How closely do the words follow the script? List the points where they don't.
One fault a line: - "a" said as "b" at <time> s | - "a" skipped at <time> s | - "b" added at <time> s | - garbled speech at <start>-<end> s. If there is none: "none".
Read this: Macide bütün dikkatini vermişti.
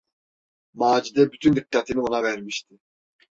- "ona" added at 2.0 s